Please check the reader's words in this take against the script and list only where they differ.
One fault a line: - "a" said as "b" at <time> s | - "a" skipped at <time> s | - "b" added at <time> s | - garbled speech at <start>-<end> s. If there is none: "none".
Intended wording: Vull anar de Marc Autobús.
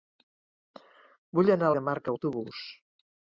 none